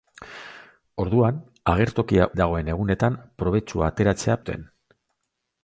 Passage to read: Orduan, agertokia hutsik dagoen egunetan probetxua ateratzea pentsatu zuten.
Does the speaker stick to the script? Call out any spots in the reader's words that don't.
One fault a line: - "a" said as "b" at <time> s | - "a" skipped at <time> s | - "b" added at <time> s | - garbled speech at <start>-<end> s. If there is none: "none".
- "hutsik" skipped at 2.3 s
- "pentsatu" skipped at 4.4 s